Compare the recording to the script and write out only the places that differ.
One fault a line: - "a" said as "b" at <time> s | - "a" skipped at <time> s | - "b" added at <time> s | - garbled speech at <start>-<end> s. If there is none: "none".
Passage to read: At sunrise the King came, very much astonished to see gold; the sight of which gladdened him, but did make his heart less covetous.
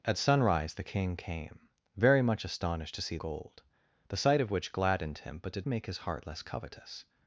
none